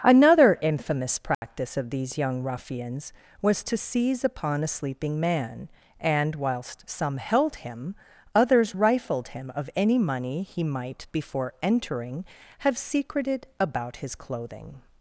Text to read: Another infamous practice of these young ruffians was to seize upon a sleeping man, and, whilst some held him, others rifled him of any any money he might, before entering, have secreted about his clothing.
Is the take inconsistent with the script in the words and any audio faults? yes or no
yes